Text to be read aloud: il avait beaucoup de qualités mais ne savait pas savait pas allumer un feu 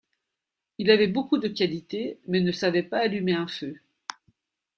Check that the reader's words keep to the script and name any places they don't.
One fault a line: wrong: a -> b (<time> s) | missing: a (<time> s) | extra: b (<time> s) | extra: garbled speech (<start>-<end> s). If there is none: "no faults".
missing: savait pas (3.0 s)